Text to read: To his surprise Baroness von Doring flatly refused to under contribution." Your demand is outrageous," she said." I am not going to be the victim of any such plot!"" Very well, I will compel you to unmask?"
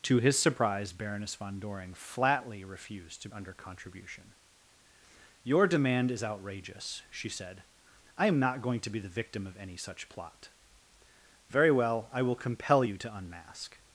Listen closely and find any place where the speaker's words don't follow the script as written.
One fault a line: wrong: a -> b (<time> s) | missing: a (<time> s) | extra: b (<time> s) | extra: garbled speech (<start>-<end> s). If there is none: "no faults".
no faults